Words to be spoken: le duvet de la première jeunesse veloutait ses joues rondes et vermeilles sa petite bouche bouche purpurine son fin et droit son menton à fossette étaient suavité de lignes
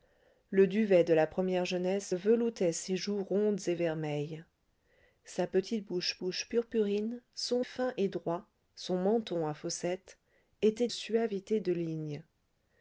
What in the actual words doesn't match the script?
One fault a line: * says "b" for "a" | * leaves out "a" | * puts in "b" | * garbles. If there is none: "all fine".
all fine